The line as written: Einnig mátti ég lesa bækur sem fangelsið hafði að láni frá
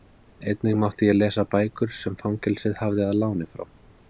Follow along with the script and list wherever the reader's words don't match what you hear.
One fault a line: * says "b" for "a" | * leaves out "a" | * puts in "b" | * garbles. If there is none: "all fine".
all fine